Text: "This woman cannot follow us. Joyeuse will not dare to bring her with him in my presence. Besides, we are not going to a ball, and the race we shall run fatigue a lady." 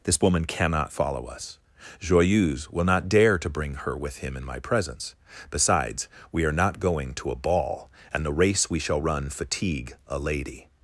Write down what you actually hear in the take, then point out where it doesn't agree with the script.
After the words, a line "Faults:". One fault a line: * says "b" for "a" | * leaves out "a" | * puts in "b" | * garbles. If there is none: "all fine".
"This woman cannot follow us. Joyeuse will not dare to bring her with him in my presence. Besides, we are not going to a ball, and the race we shall run fatigue a lady."
Faults:
all fine